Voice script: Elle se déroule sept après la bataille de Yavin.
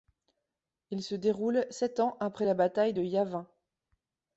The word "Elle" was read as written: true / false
false